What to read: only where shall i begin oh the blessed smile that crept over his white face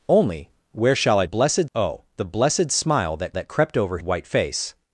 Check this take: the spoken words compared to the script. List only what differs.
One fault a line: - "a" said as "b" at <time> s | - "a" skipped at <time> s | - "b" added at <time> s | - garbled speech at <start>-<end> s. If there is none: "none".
- "begin" said as "blessed" at 1.2 s
- "that" added at 3.3 s
- "his" skipped at 4.0 s